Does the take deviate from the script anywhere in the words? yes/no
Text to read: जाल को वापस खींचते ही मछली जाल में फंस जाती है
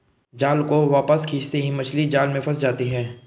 no